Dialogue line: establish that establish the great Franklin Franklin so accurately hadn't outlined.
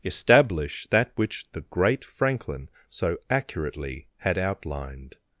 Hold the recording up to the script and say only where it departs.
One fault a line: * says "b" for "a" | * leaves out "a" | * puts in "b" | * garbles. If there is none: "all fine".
* says "which" for "establish"
* leaves out "Franklin"
* says "had" for "hadn't"